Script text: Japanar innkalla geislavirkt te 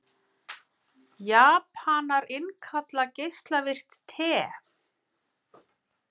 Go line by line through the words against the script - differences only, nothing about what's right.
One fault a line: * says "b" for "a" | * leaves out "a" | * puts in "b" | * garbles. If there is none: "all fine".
all fine